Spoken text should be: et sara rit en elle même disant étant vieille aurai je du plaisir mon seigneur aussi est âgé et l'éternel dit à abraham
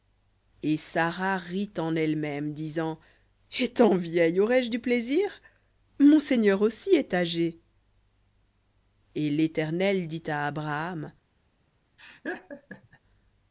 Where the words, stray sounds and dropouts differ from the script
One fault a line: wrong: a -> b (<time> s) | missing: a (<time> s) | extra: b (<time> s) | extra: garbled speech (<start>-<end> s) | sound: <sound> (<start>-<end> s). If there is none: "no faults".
sound: laugh (12.0-13.0 s)